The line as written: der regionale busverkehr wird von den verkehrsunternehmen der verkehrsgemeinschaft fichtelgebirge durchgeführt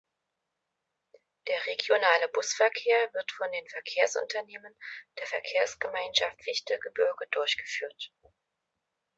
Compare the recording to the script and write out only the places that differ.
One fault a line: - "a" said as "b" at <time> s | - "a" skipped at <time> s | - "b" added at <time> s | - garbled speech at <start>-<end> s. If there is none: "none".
none